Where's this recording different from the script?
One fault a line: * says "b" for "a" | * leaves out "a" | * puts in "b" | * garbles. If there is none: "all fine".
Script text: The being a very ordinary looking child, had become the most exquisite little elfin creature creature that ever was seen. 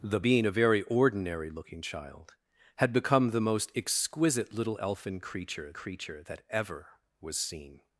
all fine